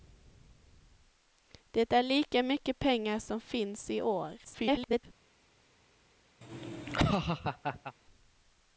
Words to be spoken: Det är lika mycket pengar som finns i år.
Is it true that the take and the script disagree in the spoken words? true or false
true